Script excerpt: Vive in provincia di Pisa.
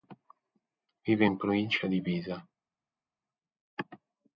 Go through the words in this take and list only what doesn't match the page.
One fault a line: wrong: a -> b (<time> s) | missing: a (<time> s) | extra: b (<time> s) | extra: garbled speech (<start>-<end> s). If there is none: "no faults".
no faults